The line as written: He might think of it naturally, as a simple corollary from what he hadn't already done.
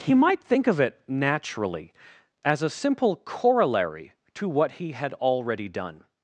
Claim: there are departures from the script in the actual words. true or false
true